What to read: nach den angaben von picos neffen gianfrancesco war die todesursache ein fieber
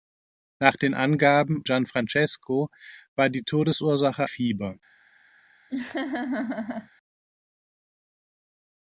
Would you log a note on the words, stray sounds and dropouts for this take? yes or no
yes